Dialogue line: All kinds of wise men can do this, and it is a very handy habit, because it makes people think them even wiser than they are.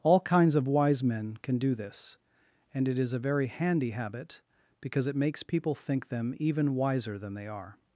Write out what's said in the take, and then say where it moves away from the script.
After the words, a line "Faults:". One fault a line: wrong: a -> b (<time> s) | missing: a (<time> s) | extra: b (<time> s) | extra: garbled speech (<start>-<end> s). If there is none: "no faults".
All kinds of wise men can do this, and it is a very handy habit, because it makes people think them even wiser than they are.
Faults:
no faults